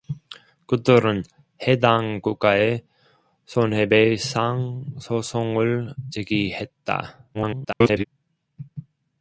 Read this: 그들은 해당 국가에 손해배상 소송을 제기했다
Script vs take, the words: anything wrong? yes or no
yes